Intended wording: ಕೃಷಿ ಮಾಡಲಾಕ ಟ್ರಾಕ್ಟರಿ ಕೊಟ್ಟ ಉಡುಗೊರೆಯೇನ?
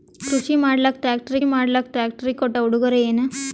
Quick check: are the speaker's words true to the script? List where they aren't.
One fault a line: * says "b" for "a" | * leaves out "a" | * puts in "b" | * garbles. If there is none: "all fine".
* puts in "ಮಾಡಲಾಕ ಟ್ರಾಕ್ಟರಿ"